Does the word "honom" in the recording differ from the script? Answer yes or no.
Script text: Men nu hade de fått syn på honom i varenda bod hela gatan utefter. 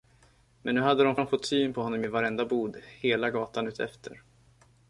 no